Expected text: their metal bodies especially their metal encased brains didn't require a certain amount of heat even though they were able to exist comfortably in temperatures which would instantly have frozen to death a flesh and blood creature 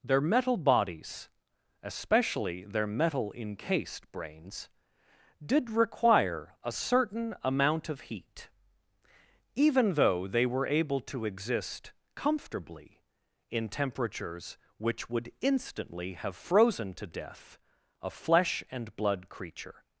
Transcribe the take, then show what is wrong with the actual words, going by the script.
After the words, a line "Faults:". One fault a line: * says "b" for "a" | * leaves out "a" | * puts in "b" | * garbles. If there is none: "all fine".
their metal bodies especially their metal encased brains did require a certain amount of heat even though they were able to exist comfortably in temperatures which would instantly have frozen to death a flesh and blood creature
Faults:
* says "did" for "didn't"